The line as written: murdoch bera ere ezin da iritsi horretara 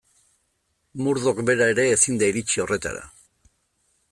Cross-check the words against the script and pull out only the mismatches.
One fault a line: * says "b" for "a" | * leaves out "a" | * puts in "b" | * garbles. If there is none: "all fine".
all fine